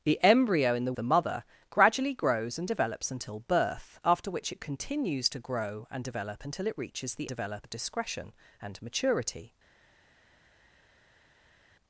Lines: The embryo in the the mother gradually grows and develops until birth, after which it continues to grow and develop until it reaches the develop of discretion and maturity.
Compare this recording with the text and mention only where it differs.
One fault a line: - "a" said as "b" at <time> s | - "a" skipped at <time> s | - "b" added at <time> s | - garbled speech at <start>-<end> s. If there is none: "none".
none